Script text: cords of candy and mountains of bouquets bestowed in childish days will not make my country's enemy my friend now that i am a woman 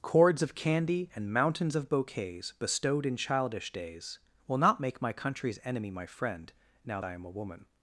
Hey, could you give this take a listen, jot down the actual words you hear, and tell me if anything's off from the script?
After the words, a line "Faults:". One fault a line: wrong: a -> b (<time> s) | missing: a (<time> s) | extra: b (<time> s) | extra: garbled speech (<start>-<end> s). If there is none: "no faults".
cords of candy and mountains of bouquets bestowed in childish days will not make my country's enemy my friend now i am a woman
Faults:
missing: that (7.0 s)